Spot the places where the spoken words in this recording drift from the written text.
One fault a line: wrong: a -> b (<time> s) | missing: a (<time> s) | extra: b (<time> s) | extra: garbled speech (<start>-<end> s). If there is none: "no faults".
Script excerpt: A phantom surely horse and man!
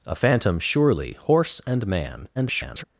extra: garbled speech (2.3-2.8 s)